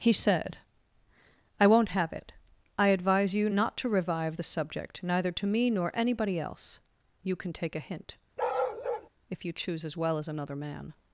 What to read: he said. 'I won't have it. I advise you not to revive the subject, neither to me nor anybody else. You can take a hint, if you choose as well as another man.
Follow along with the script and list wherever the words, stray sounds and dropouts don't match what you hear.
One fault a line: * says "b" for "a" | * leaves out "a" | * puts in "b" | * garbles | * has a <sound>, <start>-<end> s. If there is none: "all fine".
* has a bark, 8.4-9.1 s